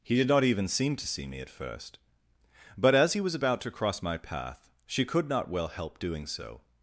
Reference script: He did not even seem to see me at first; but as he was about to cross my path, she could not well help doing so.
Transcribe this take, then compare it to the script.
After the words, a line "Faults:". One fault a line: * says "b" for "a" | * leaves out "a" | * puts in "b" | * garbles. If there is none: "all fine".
He did not even seem to see me at first; but as he was about to cross my path, she could not well help doing so.
Faults:
all fine